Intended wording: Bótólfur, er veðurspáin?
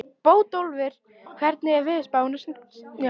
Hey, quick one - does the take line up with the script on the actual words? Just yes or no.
no